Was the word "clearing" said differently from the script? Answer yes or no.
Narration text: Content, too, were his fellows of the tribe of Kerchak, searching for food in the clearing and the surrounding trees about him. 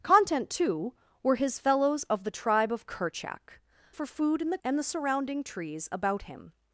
yes